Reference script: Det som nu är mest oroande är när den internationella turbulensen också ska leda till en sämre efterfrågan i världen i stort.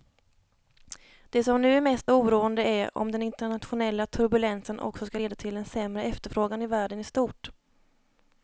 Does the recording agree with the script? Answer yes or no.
no